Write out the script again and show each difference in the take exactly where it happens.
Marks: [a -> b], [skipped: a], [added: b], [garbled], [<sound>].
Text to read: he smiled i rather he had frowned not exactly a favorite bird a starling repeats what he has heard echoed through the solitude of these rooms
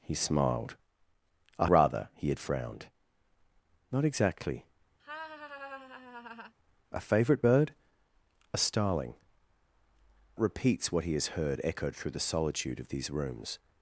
he smiled i rather he had frowned not exactly [laugh] a favorite bird a starling repeats what he has heard echoed through the solitude of these rooms